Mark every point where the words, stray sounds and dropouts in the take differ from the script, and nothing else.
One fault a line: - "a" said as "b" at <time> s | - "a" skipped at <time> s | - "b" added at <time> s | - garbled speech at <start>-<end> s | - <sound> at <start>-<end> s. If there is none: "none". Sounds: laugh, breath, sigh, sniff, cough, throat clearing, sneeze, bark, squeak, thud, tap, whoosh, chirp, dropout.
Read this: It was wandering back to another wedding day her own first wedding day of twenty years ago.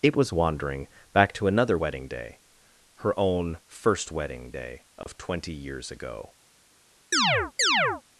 - dropout at 5.0-5.1 s
- chirp at 7.1-8.0 s